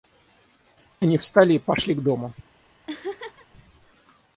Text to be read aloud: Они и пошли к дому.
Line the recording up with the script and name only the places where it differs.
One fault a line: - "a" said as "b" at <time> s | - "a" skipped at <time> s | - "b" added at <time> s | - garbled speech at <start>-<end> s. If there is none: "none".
- "встали" added at 1.2 s